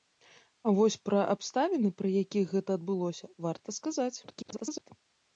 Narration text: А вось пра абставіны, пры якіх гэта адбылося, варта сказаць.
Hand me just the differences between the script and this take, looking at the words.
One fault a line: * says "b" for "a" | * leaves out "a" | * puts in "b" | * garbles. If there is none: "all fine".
* garbles